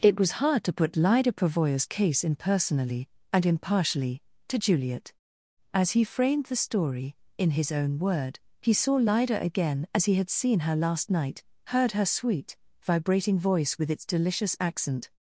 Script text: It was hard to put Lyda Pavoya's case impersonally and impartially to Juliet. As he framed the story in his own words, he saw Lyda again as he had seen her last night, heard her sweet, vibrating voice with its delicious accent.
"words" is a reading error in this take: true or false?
true